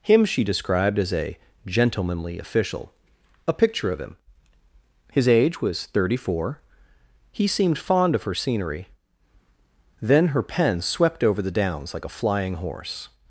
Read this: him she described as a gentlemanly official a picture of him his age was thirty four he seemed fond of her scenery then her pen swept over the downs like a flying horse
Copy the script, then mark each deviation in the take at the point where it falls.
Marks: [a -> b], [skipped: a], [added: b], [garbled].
him she described as a gentlemanly official a picture of him his age was thirty four he seemed fond of her scenery then her pen swept over the downs like a flying horse